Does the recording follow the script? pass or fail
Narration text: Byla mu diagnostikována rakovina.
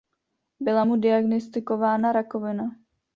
pass